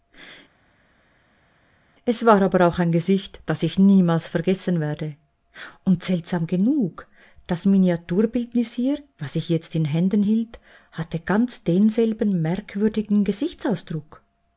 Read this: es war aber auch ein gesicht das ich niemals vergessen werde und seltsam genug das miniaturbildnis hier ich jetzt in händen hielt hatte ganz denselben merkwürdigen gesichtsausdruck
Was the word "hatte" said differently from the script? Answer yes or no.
no